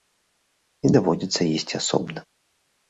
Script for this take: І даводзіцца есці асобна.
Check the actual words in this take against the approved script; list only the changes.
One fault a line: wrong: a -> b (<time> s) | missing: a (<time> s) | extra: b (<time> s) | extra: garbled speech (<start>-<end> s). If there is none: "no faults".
no faults